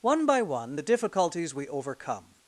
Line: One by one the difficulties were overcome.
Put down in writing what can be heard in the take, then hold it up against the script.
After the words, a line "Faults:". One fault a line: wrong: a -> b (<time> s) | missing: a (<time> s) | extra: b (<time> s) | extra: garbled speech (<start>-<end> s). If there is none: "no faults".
One by one the difficulties we overcome.
Faults:
wrong: were -> we (1.5 s)